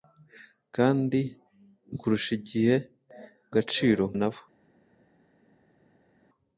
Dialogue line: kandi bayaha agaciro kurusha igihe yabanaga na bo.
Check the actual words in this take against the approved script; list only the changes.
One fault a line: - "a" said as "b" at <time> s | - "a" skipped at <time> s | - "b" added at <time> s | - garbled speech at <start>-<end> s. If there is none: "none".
- "bayaha agaciro" skipped at 1.2 s
- "yabanaga" said as "agaciro" at 3.5 s